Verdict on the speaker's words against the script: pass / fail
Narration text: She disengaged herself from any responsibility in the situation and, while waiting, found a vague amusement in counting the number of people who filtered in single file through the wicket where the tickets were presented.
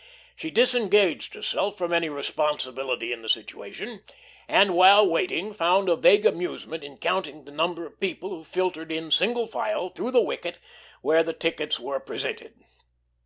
pass